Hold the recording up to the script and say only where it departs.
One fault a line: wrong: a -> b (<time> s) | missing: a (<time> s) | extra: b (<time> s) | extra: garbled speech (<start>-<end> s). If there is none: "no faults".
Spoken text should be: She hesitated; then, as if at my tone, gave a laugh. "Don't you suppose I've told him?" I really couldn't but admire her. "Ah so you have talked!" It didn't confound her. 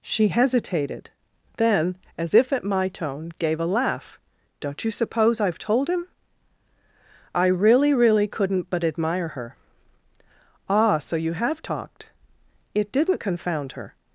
extra: really (7.9 s)